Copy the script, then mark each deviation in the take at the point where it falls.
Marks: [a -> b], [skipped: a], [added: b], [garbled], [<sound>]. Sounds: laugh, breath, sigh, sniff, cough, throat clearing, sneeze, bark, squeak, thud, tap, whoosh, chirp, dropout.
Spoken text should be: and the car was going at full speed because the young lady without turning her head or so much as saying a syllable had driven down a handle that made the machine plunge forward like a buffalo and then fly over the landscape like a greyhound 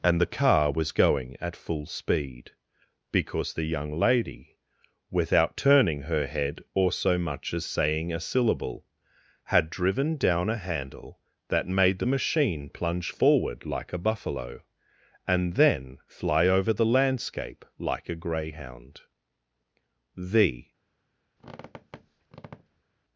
and the car was going at full speed because the young lady without turning her head or so much as saying a syllable had driven down a handle that made the machine plunge forward like a buffalo and then fly over the landscape like a greyhound [added: the] [squeak]